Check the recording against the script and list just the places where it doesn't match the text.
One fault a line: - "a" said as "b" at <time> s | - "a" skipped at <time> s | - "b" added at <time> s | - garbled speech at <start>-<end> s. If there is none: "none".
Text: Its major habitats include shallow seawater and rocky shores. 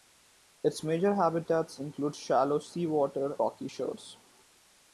- "and" skipped at 3.4 s